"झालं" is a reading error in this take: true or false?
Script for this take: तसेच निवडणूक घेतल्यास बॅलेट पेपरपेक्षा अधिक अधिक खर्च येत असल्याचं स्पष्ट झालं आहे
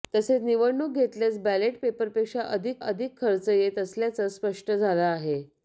false